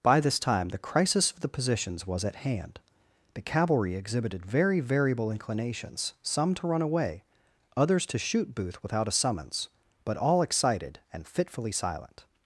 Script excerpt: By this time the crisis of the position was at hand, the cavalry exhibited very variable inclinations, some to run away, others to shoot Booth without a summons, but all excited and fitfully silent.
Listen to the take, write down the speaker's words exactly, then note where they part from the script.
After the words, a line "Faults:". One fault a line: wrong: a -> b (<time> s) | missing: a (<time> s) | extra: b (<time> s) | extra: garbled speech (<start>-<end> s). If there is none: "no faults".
By this time the crisis of the positions was at hand, the cavalry exhibited very variable inclinations, some to run away, others to shoot Booth without a summons, but all excited and fitfully silent.
Faults:
wrong: position -> positions (1.5 s)